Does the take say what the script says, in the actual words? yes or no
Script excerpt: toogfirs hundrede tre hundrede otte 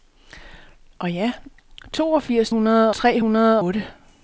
yes